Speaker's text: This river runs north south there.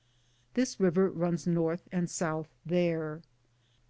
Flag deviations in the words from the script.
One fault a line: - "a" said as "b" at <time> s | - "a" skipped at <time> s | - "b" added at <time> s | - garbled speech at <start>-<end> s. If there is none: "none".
- "and" added at 1.9 s